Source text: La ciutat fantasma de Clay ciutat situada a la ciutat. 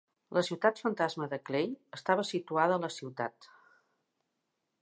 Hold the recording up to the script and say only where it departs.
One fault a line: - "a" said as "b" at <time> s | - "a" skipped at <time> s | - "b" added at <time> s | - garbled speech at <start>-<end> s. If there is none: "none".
- "ciutat" said as "estava" at 2.0 s